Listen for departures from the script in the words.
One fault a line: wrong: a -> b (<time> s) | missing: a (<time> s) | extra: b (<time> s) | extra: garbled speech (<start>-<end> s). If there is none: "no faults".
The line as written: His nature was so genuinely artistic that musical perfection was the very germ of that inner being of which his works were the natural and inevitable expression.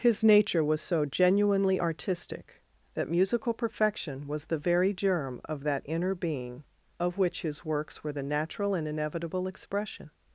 no faults